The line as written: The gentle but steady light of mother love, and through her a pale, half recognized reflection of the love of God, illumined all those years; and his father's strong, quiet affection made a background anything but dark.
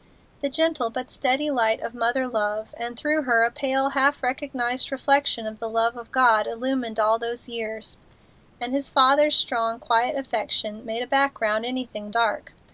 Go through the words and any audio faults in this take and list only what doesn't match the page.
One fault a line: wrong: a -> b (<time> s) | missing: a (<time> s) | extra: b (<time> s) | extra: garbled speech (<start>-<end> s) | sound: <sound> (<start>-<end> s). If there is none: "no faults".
missing: but (12.1 s)